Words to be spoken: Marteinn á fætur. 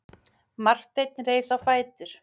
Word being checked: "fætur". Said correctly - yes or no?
yes